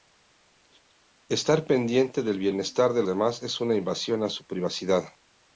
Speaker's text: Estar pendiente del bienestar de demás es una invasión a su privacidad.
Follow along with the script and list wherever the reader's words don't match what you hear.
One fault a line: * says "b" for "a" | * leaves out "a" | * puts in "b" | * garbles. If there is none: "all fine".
all fine